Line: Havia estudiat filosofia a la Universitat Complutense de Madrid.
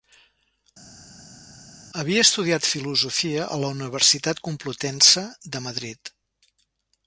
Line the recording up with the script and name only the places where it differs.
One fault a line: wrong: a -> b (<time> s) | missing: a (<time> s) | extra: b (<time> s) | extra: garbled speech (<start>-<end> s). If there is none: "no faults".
no faults